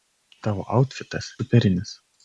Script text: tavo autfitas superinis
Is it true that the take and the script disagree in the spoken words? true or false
false